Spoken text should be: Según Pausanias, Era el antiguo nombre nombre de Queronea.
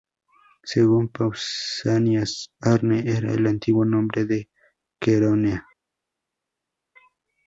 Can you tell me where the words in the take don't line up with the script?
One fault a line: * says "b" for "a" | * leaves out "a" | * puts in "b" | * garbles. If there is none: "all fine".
* puts in "Arne"
* leaves out "nombre"